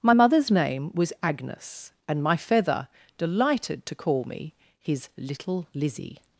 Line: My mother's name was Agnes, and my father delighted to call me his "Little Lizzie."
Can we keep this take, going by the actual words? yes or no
no